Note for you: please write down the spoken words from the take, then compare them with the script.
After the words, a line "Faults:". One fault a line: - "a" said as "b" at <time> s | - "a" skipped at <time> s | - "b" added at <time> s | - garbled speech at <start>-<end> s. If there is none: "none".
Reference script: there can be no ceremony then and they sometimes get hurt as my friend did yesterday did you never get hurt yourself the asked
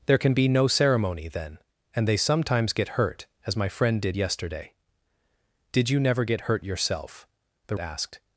there can be no ceremony then and they sometimes get hurt as my friend did yesterday did you never get hurt yourself the asked
Faults:
none